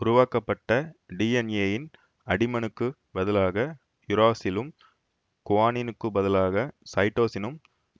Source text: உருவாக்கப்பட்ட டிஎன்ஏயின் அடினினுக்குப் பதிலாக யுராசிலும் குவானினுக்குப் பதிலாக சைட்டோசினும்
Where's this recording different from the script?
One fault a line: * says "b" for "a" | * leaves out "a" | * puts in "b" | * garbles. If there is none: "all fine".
all fine